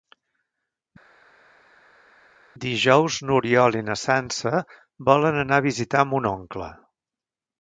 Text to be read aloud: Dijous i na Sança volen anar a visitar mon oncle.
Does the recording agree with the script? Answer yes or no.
no